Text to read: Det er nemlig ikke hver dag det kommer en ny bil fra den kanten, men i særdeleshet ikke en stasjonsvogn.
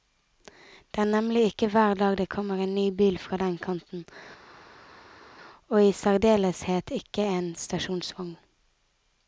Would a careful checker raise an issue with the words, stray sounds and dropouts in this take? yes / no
yes